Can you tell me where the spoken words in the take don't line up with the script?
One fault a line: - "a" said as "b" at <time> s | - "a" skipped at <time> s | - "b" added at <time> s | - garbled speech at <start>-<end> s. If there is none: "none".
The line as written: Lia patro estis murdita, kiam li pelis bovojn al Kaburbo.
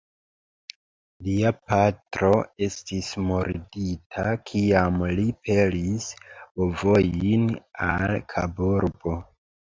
none